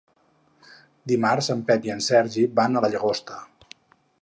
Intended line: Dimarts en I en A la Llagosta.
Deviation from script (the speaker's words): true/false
true